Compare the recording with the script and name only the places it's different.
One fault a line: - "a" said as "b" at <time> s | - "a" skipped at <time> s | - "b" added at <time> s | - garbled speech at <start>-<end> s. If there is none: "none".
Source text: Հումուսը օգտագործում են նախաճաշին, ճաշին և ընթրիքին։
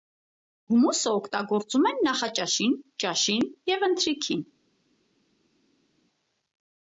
none